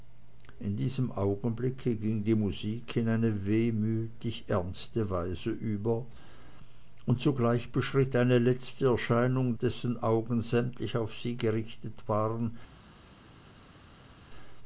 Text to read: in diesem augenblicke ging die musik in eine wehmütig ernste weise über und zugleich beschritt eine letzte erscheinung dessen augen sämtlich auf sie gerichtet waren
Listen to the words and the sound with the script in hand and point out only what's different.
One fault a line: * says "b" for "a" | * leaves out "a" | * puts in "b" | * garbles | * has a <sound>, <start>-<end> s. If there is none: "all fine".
all fine